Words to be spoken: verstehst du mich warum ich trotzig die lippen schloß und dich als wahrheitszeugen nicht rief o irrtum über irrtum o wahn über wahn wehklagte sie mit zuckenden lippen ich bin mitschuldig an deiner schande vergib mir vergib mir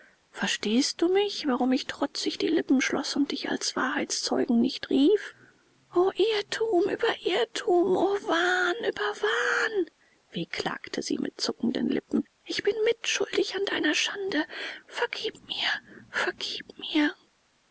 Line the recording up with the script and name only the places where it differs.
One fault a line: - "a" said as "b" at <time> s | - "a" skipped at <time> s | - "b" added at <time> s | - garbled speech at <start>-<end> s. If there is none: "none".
none